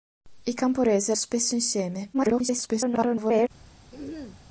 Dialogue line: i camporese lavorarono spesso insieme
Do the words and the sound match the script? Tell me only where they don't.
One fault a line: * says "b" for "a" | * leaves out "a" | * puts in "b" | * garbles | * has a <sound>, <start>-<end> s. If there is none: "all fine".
* leaves out "lavorarono"
* garbles
* has a throat clearing, 3.9-4.4 s